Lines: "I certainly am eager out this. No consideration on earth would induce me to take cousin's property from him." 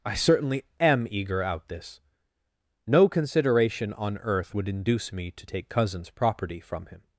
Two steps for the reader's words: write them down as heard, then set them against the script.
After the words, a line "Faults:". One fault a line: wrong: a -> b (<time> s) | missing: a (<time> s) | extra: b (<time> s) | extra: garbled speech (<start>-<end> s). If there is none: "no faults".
"I certainly am eager out this. No consideration on earth would induce me to take cousin's property from him."
Faults:
no faults